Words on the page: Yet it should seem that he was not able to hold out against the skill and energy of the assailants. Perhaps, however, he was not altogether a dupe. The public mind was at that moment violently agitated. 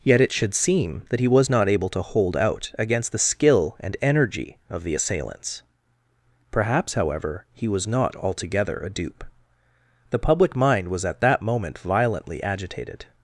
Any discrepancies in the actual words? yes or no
no